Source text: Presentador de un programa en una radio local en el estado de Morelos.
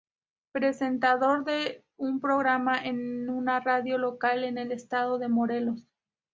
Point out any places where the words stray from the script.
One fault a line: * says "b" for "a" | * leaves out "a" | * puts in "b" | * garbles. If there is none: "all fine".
all fine